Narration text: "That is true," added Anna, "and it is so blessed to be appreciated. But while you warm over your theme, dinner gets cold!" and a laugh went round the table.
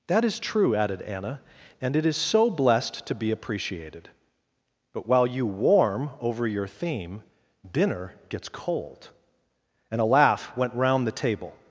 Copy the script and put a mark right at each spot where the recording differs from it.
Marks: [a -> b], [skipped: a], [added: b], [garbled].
"That is true," added Anna, "and it is so blessed to be appreciated. But while you warm over your theme, dinner gets cold!" and a laugh went round the table.